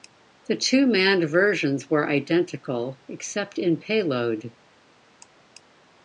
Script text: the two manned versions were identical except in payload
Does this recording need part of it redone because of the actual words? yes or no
no